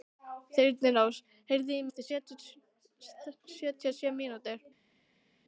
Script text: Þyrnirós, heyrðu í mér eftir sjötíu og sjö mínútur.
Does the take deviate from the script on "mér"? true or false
true